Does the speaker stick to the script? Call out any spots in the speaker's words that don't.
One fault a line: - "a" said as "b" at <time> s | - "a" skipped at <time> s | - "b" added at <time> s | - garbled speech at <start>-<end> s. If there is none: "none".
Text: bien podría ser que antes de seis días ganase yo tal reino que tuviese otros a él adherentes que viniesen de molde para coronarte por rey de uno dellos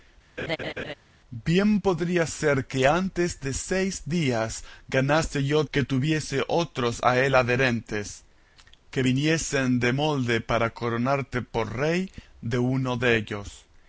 - "tal reino" skipped at 5.6 s